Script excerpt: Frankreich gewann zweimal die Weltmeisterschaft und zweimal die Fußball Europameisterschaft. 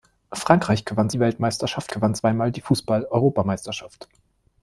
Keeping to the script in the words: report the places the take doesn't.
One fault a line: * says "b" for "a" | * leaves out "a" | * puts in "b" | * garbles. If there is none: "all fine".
* leaves out "zweimal"
* says "gewann" for "und"